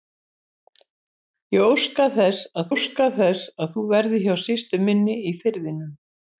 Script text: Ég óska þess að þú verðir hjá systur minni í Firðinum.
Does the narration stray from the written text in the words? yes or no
yes